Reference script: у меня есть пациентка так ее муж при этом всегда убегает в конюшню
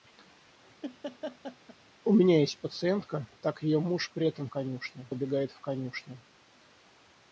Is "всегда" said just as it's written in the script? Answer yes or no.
no